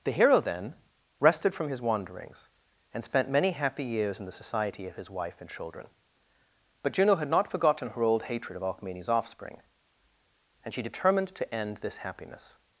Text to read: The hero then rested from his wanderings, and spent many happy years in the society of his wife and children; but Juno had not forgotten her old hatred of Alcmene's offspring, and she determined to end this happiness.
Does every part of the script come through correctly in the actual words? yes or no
yes